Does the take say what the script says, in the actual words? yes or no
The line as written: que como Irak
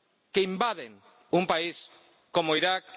no